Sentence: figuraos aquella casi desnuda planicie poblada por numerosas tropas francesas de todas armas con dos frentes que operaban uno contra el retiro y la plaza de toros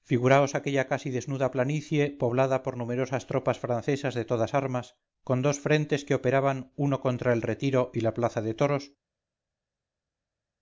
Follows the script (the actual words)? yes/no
yes